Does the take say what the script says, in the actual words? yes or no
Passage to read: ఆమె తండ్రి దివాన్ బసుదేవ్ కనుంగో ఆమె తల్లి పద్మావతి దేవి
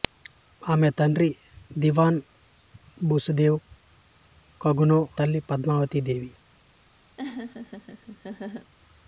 no